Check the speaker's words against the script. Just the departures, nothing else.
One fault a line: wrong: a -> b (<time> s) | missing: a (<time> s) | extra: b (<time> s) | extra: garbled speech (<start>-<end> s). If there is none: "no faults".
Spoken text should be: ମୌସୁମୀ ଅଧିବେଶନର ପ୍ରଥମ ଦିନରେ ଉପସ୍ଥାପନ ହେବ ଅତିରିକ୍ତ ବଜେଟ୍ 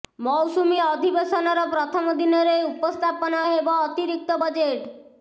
no faults